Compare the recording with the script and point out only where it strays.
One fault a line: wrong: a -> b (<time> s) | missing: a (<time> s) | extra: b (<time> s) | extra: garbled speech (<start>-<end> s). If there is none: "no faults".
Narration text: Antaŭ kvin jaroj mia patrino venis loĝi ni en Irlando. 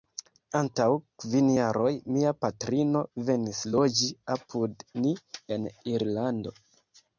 extra: apud (4.4 s)